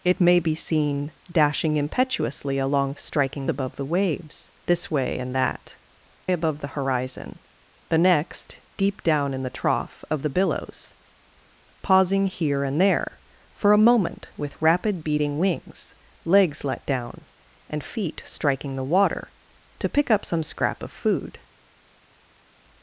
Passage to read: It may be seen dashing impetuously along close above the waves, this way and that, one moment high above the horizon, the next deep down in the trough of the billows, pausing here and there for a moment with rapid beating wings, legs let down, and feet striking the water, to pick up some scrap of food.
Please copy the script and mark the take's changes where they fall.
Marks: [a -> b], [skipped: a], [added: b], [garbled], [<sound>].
It may be seen dashing impetuously along [close -> striking] above the waves, this way and that, [skipped: one moment high] above the horizon, the next deep down in the trough of the billows, pausing here and there for a moment with rapid beating wings, legs let down, and feet striking the water, to pick up some scrap of food.